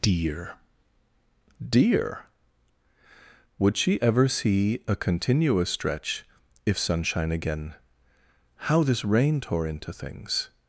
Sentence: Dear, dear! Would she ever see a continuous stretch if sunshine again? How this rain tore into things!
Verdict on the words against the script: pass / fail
pass